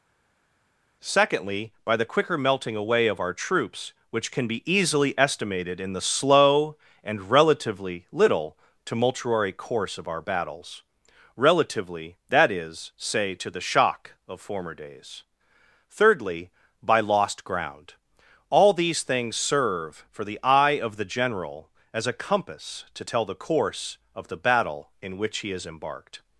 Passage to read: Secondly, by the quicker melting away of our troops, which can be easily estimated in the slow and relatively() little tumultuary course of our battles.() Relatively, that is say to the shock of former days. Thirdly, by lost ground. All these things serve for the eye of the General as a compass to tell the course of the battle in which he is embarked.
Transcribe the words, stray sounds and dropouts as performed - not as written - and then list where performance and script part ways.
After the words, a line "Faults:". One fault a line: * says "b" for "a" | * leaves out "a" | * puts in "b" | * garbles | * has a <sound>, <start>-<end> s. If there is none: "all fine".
Secondly, by the quicker melting away of our troops, which can be easily estimated in the slow and relatively() little tumultuary course of our battles.() Relatively, that is say to the shock of former days. Thirdly, by lost ground. All these things serve for the eye of the General as a compass to tell the course of the battle in which he is embarked.
Faults:
all fine